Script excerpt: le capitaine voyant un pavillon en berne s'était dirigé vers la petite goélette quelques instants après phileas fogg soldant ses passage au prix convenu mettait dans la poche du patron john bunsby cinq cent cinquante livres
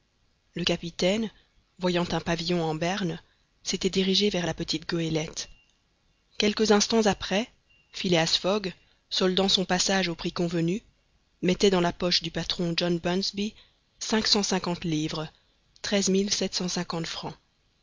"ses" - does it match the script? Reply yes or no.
no